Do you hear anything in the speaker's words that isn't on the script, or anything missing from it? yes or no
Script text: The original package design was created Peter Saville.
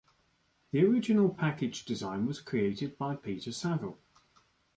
yes